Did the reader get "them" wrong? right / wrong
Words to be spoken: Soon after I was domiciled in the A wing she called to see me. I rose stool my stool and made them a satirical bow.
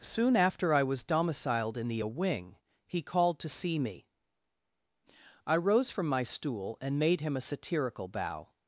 wrong